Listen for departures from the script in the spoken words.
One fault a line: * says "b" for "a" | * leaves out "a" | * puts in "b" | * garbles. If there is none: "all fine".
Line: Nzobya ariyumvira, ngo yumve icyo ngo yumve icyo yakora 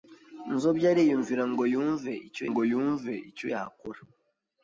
all fine